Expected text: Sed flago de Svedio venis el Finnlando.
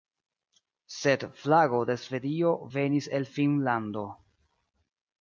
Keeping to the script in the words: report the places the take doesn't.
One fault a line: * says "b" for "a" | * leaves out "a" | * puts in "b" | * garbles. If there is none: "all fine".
all fine